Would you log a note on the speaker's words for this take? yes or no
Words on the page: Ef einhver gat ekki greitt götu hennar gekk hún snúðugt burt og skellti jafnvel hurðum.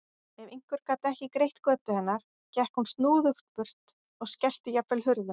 no